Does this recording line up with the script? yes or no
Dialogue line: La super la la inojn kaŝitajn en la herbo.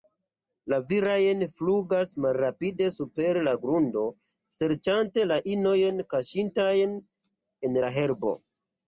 no